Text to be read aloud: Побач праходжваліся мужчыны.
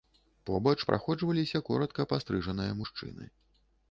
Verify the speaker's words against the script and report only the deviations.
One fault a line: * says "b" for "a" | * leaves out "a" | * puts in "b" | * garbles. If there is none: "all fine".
* puts in "коратка пастрыжаныя"